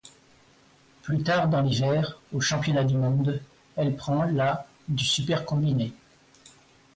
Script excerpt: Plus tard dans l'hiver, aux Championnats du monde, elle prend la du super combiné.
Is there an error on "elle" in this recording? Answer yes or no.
no